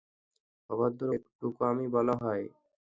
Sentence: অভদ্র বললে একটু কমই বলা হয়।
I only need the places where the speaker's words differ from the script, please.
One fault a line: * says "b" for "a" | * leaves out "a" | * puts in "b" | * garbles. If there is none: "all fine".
* leaves out "বললে"